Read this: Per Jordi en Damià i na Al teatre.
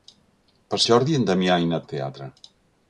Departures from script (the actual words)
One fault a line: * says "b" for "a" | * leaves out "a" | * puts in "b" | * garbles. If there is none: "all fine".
all fine